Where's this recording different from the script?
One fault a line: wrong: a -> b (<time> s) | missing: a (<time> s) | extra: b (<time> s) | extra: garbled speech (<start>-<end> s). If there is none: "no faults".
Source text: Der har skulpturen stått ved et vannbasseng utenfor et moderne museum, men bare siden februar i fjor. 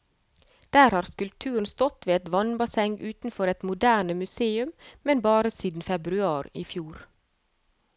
no faults